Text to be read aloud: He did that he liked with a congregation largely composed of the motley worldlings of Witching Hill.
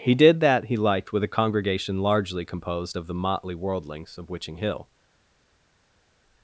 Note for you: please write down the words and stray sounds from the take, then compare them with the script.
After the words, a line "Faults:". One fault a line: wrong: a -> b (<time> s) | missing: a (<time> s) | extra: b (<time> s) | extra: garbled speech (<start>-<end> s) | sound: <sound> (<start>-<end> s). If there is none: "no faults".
He did that he liked with a congregation largely composed of the motley worldlings of Witching Hill.
Faults:
no faults